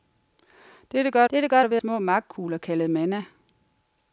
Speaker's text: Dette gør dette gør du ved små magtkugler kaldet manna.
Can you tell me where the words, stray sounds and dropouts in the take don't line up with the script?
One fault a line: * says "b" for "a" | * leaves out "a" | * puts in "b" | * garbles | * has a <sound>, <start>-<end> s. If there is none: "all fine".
all fine